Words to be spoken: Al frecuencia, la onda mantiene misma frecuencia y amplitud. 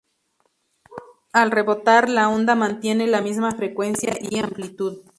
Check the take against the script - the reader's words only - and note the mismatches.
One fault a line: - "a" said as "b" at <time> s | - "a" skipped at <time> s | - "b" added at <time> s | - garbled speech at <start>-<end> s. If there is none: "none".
- "frecuencia" said as "rebotar" at 1.5 s
- "la" added at 3.0 s